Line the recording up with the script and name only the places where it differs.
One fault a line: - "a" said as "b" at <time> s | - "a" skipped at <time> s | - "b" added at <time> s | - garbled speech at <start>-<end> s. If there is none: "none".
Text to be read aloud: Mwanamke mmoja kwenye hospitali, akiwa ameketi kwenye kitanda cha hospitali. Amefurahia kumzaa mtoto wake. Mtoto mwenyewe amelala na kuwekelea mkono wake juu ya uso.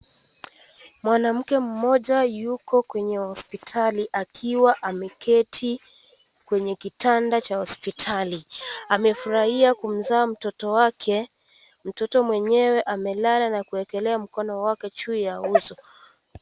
- "yuko" added at 2.2 s